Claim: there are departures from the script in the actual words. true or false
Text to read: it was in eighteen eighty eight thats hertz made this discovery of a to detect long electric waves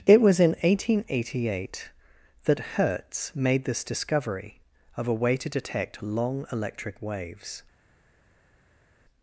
true